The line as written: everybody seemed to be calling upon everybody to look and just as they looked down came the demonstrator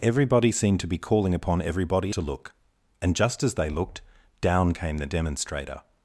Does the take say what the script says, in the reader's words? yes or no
yes